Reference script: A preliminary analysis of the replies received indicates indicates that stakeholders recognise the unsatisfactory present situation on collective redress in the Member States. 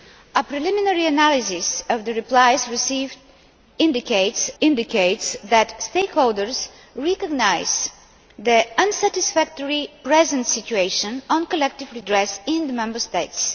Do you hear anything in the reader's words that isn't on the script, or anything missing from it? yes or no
no